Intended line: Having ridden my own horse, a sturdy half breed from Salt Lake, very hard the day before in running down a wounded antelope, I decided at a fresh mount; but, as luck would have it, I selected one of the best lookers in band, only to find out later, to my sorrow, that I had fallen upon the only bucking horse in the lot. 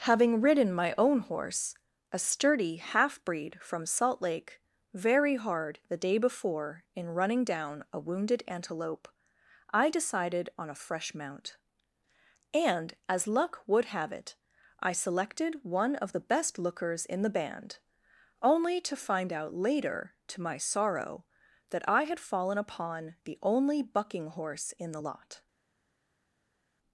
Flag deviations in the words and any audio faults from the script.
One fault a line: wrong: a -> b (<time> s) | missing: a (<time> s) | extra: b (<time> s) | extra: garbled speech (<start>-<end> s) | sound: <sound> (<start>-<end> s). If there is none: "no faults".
wrong: at -> on (10.6 s)
wrong: but -> and (12.5 s)
extra: the (17.2 s)